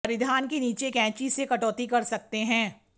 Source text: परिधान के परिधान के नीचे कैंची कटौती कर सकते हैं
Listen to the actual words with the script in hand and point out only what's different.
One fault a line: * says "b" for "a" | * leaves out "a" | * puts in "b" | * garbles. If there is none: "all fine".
* leaves out "परिधान के"
* puts in "से"